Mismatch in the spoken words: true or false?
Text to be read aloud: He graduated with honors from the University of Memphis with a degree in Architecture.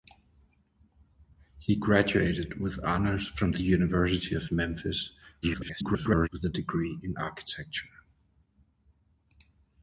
true